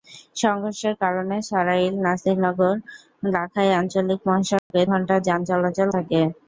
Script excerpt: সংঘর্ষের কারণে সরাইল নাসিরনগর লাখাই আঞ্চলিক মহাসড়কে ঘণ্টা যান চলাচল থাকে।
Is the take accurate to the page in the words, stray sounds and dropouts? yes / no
no